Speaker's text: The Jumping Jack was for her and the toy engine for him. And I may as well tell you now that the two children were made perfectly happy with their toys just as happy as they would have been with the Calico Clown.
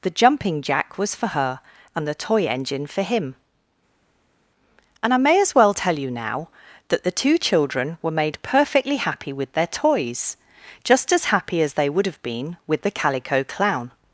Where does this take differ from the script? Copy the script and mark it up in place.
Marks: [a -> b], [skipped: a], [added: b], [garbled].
The Jumping Jack was for her and the toy engine for him. And I may as well tell you now that the two children were made perfectly happy with their toys just as happy as they would have been with the Calico Clown.